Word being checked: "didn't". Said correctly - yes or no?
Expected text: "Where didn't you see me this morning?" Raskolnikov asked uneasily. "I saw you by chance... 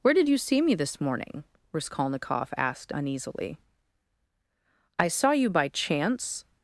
no